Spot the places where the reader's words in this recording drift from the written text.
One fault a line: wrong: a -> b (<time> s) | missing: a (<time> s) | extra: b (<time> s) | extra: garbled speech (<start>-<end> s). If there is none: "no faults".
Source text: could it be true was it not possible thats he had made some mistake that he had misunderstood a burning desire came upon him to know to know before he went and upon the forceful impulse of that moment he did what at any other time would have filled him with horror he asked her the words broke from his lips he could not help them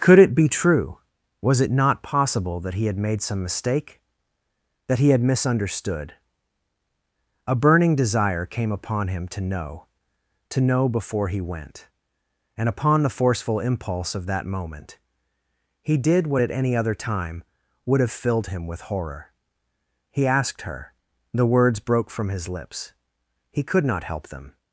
wrong: thats -> that (2.6 s)